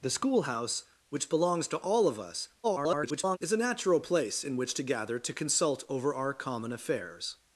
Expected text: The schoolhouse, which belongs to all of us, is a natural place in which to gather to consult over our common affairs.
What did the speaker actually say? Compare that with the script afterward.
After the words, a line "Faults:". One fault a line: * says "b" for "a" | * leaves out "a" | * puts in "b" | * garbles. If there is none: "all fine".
The schoolhouse, which belongs to all of us, [garbled] is a natural place in which to gather to consult over our common affairs.
Faults:
* garbles